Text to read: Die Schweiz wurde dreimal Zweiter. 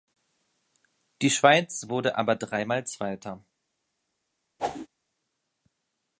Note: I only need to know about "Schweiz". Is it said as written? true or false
true